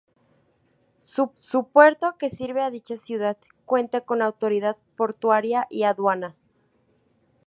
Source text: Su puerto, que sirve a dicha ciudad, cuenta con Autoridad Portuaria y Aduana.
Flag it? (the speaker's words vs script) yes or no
yes